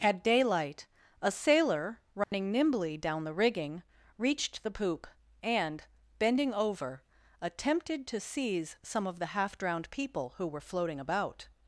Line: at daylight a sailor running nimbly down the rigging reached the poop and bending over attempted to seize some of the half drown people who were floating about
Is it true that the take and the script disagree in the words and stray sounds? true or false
true